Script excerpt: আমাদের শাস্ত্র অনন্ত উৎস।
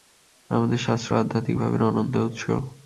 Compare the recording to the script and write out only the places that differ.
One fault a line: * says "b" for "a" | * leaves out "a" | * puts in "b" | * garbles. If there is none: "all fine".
* puts in "আধ্যাত্মিক ভাবের"